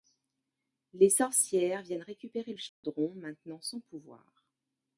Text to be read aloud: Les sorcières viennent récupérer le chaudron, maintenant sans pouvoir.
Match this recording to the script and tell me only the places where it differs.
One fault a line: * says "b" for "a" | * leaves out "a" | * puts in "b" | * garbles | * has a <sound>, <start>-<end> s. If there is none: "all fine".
* has a dropout, 2.7-2.8 s